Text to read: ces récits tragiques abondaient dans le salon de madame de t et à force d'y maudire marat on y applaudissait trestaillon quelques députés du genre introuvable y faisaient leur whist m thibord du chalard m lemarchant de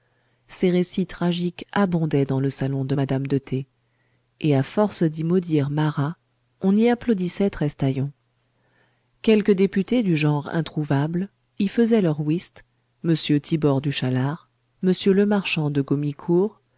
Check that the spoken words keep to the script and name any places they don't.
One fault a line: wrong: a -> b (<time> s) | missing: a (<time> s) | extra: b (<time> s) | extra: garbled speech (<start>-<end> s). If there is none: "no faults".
no faults